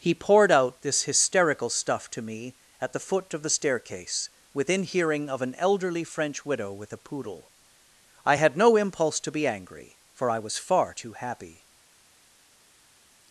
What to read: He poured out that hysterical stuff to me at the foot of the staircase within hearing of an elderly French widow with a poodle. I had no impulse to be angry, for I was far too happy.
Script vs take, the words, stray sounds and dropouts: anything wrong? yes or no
yes